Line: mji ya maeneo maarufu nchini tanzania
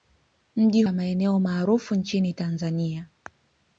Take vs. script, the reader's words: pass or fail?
pass